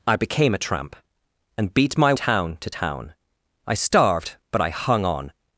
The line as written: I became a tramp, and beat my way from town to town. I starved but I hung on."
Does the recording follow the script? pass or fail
fail